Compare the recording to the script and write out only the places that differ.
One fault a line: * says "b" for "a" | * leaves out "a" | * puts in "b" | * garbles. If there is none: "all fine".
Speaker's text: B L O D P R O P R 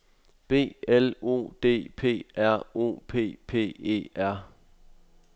* puts in "P E"